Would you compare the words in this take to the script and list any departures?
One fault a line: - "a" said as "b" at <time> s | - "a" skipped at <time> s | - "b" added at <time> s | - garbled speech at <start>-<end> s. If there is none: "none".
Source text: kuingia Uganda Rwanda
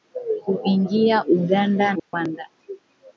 none